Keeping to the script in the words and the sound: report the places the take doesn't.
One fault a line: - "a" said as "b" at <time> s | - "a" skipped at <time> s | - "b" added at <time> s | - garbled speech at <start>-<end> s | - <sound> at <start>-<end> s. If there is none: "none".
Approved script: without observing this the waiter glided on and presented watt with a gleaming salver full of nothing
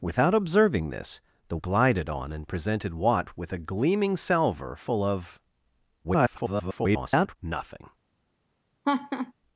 - "waiter" skipped at 1.6 s
- garbled speech at 6.0-7.4 s
- laugh at 8.8-9.3 s